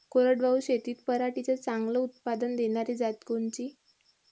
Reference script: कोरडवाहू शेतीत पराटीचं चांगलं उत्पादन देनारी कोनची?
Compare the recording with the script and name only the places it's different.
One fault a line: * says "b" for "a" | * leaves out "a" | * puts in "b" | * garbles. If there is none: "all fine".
* puts in "जात"